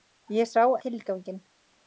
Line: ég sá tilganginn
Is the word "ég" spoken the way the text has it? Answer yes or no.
yes